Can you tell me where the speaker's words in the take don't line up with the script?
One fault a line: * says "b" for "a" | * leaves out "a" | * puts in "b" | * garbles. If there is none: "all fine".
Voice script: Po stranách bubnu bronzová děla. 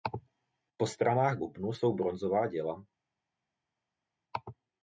* puts in "jsou"